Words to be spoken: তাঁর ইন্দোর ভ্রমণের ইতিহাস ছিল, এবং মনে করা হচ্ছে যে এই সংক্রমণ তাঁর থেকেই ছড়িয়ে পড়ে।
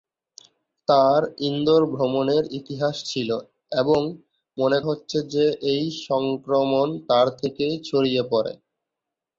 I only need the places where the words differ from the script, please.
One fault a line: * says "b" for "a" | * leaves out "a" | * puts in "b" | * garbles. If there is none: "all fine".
* leaves out "করা"